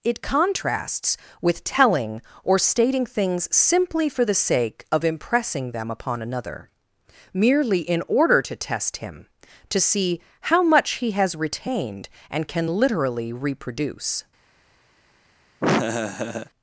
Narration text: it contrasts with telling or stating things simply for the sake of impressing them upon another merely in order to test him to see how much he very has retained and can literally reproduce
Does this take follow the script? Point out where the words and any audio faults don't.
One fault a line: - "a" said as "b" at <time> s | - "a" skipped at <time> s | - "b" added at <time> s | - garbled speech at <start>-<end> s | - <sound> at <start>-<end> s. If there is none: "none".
- "very" skipped at 11.1 s
- laugh at 15.6-16.5 s